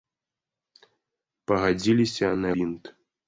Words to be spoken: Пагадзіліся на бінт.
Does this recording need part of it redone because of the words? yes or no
no